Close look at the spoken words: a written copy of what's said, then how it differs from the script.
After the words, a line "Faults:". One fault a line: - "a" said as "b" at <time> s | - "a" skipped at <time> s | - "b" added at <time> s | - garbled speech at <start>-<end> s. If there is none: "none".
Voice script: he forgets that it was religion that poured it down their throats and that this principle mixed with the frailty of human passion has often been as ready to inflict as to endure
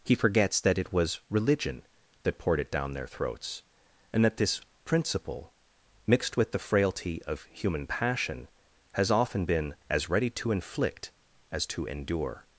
he forgets that it was religion that poured it down their throats and that this principle mixed with the frailty of human passion has often been as ready to inflict as to endure
Faults:
none